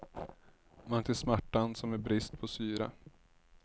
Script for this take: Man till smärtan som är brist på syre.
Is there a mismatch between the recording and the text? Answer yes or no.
no